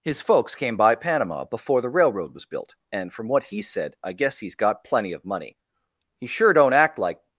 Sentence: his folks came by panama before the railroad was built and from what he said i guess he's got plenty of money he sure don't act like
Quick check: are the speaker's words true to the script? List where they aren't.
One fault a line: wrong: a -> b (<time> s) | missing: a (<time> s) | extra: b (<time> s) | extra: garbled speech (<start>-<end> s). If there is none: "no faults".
no faults